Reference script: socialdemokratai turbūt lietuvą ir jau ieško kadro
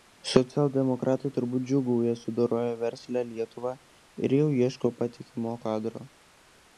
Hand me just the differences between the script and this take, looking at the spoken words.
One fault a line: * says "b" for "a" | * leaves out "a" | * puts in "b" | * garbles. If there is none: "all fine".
* puts in "džiūgauja sudoroję verslią"
* puts in "patikimo"